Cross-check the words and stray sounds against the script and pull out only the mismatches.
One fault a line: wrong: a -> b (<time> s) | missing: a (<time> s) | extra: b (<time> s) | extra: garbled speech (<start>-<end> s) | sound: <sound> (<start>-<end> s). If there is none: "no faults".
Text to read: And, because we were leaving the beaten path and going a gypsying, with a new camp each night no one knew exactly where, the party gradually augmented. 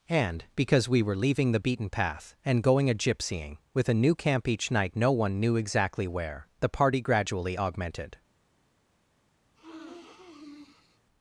sound: sniff (9.5-11.0 s)